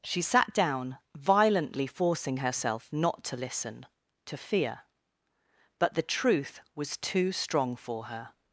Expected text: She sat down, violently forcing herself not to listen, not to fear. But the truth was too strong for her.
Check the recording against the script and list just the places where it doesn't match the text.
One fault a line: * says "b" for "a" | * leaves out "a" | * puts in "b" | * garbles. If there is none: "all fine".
* leaves out "not"